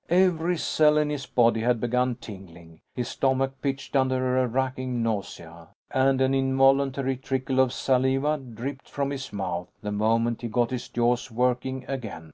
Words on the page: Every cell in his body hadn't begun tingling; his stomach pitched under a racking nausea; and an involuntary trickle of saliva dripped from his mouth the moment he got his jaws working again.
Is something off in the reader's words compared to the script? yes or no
yes